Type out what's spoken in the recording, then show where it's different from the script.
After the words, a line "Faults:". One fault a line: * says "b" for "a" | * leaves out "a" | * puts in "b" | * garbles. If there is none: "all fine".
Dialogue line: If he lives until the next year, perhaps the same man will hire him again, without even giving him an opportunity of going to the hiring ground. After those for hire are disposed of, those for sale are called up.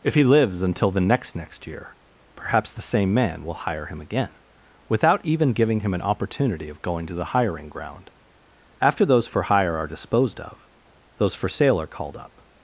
If he lives until the next next year, perhaps the same man will hire him again, without even giving him an opportunity of going to the hiring ground. After those for hire are disposed of, those for sale are called up.
Faults:
* puts in "next"